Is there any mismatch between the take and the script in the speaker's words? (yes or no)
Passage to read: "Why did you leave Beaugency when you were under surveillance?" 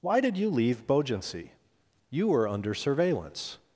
yes